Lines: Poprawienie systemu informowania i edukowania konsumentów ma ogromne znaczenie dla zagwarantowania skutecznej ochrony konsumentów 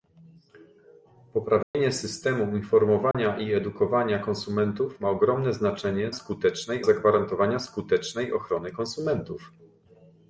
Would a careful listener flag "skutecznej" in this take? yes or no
no